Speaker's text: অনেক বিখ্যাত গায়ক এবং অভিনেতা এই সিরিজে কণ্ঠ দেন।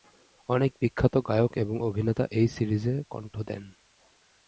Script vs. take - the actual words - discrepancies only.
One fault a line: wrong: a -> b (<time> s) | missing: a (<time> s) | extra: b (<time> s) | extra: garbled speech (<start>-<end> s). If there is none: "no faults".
no faults